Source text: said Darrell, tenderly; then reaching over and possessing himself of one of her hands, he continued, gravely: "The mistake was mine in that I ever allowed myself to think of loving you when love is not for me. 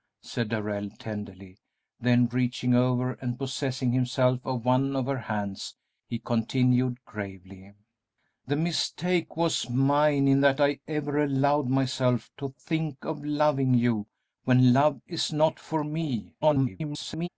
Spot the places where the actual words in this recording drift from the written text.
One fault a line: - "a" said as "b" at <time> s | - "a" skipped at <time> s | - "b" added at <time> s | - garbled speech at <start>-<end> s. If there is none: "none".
- garbled speech at 16.4-17.3 s